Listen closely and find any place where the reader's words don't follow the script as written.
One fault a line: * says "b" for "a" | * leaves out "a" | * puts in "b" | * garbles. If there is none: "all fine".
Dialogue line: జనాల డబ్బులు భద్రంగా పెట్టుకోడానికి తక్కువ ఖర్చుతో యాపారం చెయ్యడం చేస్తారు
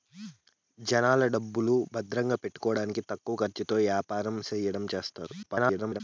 * garbles